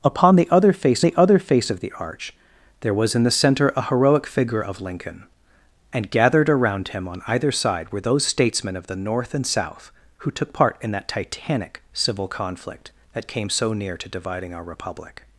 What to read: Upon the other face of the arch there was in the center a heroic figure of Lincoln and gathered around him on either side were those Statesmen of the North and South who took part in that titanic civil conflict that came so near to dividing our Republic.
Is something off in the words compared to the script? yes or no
yes